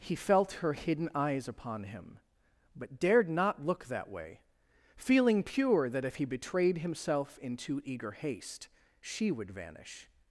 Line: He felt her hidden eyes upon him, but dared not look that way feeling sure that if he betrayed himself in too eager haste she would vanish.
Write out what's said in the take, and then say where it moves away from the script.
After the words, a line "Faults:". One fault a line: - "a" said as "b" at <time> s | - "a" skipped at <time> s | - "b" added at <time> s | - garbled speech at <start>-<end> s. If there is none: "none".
He felt her hidden eyes upon him, but dared not look that way feeling pure that if he betrayed himself in too eager haste she would vanish.
Faults:
- "sure" said as "pure" at 5.4 s